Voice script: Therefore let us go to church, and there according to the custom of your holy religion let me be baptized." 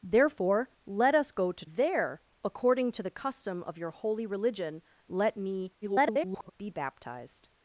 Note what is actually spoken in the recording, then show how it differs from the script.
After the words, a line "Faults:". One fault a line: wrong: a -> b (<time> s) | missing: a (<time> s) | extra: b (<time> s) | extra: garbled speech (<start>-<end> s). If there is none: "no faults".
Therefore let us go to there according to the custom of your holy religion let me [garbled] be baptized."
Faults:
missing: church and (1.6 s)
extra: garbled speech (5.8-6.5 s)